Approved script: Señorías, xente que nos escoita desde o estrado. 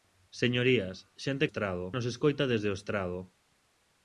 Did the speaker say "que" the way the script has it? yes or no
no